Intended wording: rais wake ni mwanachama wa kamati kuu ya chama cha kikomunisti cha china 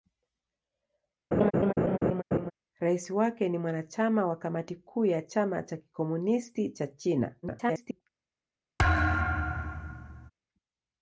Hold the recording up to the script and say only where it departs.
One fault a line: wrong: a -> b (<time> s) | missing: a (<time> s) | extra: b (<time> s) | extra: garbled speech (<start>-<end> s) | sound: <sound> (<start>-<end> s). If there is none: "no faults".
sound: laugh (1.3-2.5 s)
extra: garbled speech (7.4-8.0 s)
sound: thud (8.8-10.3 s)